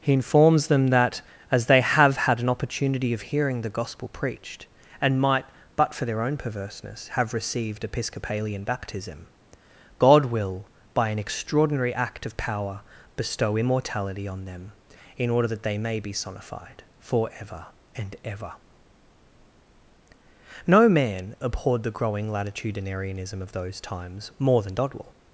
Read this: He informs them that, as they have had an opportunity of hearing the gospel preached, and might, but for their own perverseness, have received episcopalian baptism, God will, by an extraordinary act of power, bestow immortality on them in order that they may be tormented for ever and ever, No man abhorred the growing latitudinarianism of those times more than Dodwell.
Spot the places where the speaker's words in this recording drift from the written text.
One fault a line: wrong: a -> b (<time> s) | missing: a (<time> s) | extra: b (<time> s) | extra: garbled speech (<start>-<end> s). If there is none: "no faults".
wrong: tormented -> sonified (16.1 s)